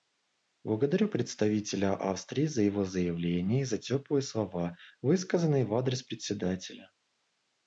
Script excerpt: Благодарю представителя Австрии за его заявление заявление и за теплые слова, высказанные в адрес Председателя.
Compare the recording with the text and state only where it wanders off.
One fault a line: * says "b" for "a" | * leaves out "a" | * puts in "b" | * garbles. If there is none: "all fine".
* leaves out "заявление"